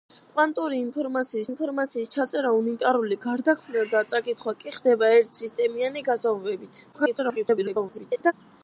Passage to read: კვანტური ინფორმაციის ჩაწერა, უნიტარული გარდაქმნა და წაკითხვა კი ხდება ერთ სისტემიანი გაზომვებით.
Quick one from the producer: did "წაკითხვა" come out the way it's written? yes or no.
yes